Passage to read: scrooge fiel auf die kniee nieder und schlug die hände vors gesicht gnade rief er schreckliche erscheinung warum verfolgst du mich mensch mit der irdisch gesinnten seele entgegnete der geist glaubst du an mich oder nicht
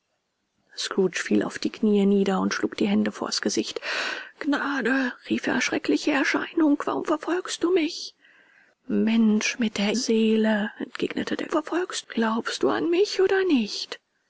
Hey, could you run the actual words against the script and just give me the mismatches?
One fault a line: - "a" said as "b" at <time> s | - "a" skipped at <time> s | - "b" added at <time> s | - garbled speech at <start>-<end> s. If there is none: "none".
- "irdisch gesinnten" skipped at 9.9 s
- "geist" said as "verfolgst" at 11.5 s